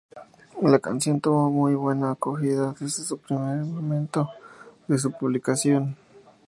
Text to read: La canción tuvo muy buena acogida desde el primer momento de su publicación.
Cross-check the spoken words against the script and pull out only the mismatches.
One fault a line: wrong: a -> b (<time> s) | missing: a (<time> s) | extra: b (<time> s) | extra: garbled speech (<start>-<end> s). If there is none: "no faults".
no faults